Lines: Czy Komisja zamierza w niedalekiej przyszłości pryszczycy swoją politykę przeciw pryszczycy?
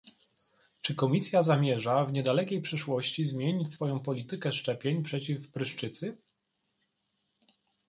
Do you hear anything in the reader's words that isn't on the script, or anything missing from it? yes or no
yes